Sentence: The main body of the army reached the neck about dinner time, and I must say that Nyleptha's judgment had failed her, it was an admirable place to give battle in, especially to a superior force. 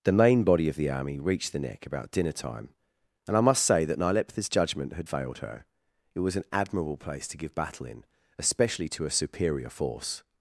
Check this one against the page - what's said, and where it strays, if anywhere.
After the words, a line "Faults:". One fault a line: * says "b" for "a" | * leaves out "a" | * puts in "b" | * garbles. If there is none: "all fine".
The main body of the army reached the neck about dinner time, and I must say that Nyleptha's judgment had failed her, it was an admirable place to give battle in, especially to a superior force.
Faults:
all fine